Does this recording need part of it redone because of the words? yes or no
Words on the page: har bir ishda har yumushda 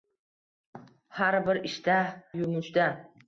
yes